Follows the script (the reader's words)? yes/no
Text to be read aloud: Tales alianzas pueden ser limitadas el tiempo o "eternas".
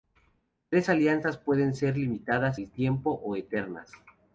yes